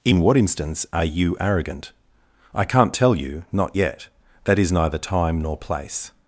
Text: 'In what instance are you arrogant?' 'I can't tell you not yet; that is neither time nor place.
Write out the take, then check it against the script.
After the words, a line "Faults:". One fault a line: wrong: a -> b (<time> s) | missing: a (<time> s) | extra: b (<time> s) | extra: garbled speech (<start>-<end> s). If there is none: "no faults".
'In what instance are you arrogant?' 'I can't tell you not yet; that is neither time nor place.
Faults:
no faults